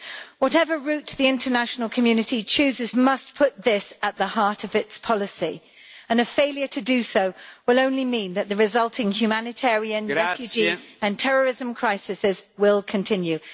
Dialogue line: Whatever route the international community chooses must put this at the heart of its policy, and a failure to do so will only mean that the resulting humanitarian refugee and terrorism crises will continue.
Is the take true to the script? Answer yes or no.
yes